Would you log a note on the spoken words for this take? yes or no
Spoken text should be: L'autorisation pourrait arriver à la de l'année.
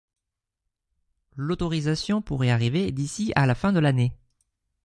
yes